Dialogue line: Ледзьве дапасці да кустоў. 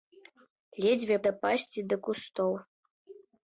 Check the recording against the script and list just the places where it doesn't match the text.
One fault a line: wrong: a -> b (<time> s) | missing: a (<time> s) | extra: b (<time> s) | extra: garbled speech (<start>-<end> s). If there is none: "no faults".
no faults